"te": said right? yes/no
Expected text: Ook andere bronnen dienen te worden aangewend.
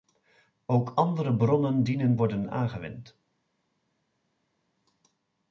no